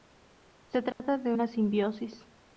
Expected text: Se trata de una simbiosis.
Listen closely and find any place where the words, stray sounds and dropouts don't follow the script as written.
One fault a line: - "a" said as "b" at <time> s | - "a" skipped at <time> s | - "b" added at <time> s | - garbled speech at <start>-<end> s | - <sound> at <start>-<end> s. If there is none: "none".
- dropout at 0.9-1.0 s